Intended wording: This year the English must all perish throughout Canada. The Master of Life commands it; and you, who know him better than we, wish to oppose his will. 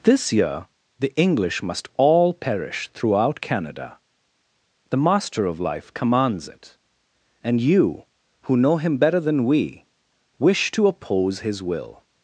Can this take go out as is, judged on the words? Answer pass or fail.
pass